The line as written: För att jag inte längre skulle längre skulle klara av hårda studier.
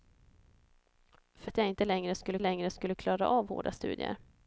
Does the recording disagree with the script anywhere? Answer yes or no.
no